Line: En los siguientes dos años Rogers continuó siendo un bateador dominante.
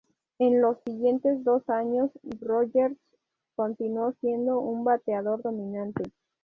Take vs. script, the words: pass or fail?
pass